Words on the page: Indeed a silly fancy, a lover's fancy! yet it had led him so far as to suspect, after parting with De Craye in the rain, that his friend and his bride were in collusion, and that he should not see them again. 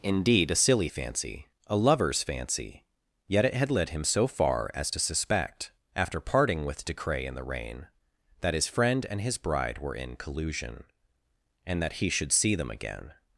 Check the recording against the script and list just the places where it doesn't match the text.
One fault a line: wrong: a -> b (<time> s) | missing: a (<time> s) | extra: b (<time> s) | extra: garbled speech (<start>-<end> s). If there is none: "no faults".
missing: not (12.3 s)